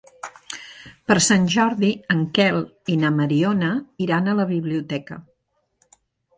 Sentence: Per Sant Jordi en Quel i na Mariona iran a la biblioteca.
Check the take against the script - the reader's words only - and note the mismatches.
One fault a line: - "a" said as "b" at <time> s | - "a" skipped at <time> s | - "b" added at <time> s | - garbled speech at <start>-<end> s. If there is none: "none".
none